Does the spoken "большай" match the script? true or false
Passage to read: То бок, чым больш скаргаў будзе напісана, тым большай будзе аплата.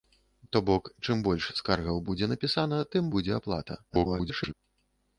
false